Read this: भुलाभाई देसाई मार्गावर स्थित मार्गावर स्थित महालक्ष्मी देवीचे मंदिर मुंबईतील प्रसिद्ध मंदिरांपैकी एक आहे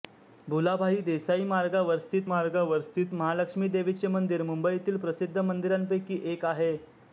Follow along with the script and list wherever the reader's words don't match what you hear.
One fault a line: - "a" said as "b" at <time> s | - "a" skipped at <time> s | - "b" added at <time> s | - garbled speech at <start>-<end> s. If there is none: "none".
none